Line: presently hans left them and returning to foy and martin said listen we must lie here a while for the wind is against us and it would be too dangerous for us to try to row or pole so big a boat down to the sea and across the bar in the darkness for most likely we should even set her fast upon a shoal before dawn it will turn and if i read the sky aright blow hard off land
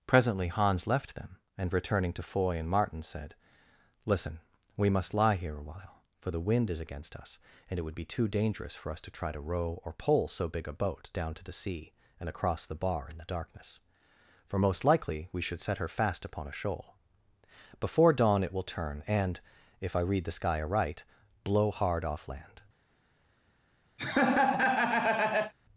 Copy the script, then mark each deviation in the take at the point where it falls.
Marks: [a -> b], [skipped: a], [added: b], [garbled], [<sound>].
presently hans left them and returning to foy and martin said listen we must lie here a while for the wind is against us and it would be too dangerous for us to try to row or pole so big a boat down to the sea and across the bar in the darkness for most likely we should [skipped: even] set her fast upon a shoal before dawn it will turn and if i read the sky aright blow hard off land [laugh]